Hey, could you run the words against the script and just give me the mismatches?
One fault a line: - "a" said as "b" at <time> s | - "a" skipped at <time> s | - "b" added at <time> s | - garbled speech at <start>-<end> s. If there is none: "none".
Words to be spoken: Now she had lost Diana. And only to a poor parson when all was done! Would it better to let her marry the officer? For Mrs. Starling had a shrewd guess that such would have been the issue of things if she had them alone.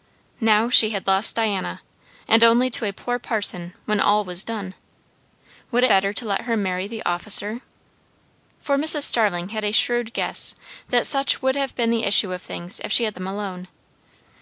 none